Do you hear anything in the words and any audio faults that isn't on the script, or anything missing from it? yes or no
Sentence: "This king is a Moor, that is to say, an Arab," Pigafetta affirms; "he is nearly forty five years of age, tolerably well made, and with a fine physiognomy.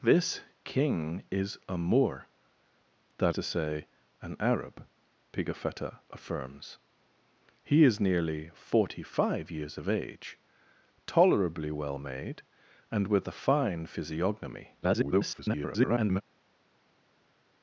yes